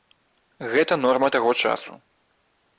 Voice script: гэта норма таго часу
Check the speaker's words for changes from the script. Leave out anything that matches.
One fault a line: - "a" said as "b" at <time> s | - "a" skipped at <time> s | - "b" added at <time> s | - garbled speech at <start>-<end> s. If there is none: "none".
none